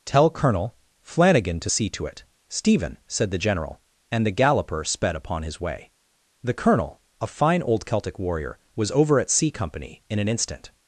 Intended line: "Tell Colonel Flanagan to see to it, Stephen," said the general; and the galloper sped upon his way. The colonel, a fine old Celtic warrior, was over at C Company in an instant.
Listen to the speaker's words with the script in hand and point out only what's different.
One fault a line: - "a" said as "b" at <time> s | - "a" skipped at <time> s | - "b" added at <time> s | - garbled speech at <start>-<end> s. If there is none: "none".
none